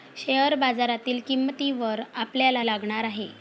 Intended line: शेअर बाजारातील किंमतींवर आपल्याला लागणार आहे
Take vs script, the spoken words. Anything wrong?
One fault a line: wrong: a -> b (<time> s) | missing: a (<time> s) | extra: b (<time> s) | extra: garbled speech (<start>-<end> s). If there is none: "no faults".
no faults